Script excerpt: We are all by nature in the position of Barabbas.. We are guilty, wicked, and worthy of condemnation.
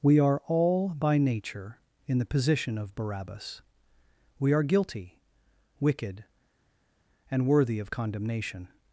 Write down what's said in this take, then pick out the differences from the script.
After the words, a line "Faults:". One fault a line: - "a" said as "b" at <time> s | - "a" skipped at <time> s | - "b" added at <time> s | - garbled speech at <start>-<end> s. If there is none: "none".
We are all by nature in the position of Barabbas.. We are guilty, wicked, and worthy of condemnation.
Faults:
none